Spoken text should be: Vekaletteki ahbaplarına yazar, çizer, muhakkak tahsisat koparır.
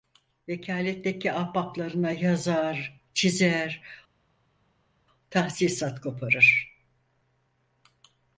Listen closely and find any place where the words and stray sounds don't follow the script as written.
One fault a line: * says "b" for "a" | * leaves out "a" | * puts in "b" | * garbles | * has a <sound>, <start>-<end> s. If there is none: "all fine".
* leaves out "muhakkak"